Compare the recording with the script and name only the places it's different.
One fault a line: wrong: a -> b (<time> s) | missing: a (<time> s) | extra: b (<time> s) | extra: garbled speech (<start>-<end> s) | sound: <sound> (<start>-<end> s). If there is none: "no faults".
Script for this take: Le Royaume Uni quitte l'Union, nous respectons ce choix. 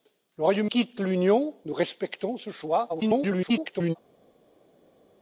missing: Uni (0.7 s)
extra: garbled speech (2.9-4.0 s)